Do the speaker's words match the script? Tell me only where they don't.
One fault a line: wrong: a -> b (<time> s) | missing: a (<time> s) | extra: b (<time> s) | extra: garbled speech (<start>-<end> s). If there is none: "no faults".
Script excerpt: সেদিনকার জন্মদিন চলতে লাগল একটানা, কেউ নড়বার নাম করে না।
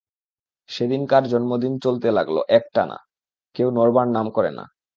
no faults